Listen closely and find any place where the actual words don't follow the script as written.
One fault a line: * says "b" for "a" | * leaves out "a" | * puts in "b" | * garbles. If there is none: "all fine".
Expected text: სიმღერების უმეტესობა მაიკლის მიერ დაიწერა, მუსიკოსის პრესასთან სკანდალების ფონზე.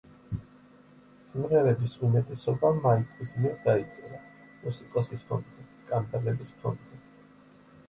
* says "ფონზე" for "პრესასთან"